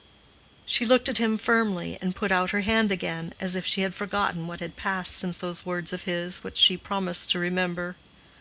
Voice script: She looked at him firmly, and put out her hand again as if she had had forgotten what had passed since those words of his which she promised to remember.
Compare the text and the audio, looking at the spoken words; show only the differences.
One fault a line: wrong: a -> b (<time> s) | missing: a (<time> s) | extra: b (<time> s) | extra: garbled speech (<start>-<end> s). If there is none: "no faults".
missing: had (3.9 s)